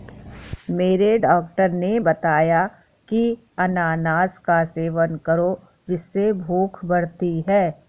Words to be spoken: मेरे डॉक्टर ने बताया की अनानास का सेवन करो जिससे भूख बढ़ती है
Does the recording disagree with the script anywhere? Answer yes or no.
no